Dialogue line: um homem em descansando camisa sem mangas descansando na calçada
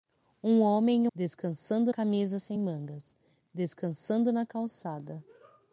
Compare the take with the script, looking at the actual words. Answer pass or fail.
pass